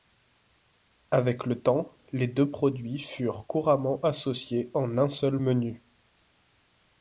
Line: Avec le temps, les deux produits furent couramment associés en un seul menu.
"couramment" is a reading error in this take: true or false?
false